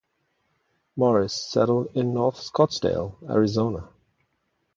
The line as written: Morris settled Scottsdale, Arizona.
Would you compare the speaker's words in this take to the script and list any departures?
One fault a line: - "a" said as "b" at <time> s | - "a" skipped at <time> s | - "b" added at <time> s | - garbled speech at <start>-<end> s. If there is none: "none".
- "in North" added at 1.9 s